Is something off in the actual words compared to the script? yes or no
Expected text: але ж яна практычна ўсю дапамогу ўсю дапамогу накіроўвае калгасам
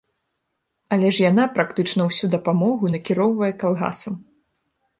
yes